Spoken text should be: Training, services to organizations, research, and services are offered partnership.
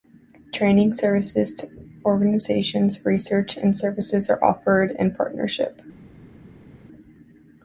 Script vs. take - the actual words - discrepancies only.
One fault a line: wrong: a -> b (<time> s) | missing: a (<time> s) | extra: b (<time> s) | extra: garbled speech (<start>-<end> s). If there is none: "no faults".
extra: in (4.9 s)